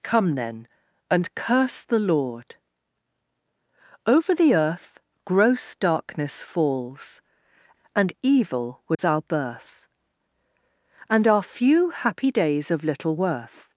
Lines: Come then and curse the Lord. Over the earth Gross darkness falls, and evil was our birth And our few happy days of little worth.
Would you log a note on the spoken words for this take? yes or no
no